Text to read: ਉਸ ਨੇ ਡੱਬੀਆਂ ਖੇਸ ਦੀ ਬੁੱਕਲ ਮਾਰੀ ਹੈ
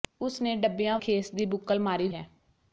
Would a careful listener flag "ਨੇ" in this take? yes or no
no